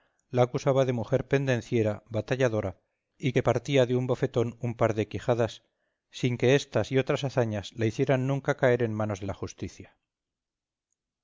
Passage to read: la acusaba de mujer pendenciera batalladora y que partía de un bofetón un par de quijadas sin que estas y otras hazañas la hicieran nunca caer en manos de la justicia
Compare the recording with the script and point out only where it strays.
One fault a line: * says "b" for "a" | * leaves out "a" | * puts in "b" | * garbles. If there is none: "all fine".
all fine